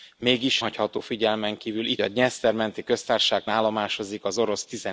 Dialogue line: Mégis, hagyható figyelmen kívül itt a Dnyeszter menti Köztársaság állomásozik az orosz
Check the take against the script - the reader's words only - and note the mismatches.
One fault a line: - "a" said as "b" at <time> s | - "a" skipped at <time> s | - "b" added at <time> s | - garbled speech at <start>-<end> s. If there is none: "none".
none